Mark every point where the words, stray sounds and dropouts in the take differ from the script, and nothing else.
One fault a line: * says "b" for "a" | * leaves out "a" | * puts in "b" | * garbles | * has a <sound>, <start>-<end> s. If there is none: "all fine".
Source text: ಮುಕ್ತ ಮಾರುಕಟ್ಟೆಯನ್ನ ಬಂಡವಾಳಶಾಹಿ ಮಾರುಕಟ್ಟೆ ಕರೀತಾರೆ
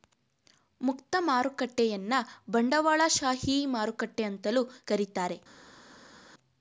* puts in "ಅಂತಲೂ"